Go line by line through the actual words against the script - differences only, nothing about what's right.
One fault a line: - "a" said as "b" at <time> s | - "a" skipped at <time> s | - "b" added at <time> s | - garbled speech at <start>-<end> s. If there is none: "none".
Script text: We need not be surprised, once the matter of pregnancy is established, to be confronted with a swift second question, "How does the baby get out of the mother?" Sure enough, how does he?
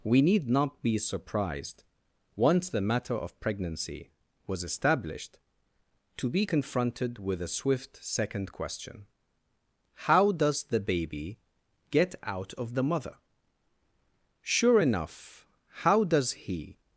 - "is" said as "was" at 4.5 s